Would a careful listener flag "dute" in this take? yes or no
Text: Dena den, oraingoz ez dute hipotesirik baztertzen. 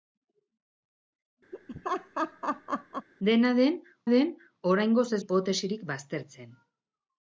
yes